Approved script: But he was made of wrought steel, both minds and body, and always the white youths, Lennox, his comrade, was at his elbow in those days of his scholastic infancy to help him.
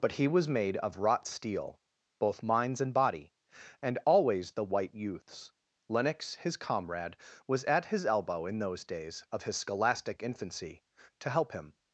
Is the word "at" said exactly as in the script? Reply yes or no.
yes